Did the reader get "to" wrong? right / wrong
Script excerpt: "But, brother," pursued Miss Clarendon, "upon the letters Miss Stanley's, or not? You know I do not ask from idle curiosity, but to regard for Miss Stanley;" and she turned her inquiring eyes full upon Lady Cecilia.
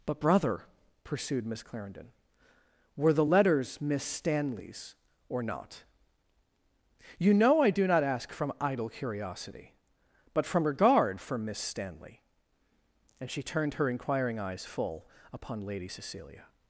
wrong